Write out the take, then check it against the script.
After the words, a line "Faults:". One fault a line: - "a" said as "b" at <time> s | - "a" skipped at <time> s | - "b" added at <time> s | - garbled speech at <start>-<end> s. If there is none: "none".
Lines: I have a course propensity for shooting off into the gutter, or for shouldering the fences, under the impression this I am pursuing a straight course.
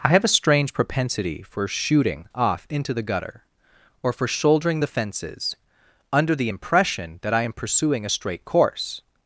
I have a strange propensity for shooting off into the gutter, or for shouldering the fences, under the impression that I am pursuing a straight course.
Faults:
- "course" said as "strange" at 0.3 s
- "this" said as "that" at 7.2 s